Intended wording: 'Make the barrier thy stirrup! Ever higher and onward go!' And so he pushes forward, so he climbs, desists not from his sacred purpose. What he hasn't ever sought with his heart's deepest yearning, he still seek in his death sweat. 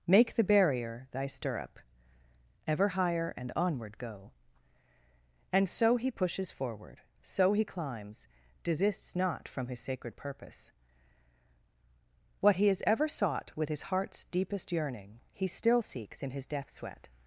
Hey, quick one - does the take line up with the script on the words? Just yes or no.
no